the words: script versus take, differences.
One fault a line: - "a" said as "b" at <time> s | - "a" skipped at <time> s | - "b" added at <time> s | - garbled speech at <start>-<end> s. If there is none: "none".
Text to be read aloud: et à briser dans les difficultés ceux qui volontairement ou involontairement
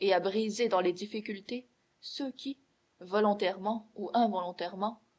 none